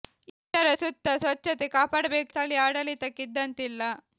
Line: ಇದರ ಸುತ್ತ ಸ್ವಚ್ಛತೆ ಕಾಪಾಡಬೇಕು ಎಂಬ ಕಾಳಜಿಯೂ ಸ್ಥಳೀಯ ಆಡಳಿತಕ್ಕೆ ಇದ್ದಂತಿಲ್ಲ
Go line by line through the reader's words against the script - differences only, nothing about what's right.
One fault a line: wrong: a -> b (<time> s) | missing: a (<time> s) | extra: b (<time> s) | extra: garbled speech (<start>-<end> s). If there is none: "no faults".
missing: ಎಂಬ ಕಾಳಜಿಯೂ (2.3 s)